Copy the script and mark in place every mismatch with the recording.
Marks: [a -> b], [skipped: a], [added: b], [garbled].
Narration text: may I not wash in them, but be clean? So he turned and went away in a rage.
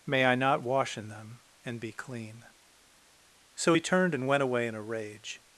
may I not wash in them, [but -> and] be clean? So he turned and went away in a rage.